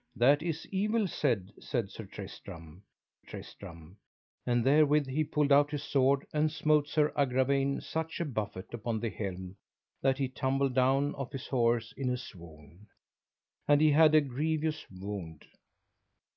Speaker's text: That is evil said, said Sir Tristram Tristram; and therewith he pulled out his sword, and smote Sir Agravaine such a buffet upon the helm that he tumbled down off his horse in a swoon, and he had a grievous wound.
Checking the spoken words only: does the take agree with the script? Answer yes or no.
yes